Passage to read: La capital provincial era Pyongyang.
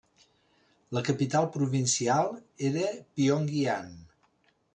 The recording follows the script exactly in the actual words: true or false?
true